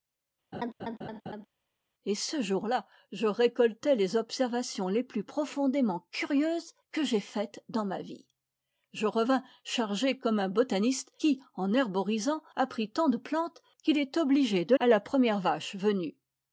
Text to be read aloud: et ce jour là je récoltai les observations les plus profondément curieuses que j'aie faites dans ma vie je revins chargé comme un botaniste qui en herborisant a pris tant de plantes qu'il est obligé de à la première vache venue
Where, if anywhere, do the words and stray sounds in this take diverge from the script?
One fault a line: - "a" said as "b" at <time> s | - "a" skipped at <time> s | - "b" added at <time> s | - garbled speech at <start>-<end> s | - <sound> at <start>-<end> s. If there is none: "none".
- laugh at 0.5-1.5 s